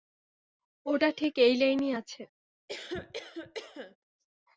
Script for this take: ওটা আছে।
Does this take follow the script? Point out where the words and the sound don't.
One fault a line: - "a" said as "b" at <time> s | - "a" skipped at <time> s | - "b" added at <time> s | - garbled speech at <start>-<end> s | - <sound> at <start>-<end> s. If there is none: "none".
- "ঠিক এই লাইনেই" added at 1.1 s
- cough at 2.7-4.0 s